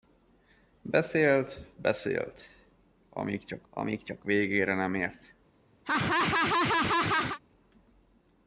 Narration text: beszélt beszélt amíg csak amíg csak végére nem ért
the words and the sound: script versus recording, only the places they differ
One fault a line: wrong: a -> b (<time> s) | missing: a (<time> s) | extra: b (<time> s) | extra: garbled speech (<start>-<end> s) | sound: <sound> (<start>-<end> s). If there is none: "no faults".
sound: laugh (5.8-7.4 s)